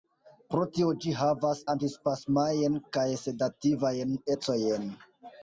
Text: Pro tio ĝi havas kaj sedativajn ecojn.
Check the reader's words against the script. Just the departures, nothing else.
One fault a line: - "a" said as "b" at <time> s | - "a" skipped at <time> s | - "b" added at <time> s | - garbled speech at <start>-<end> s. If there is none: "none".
- "antispasmajn" added at 1.7 s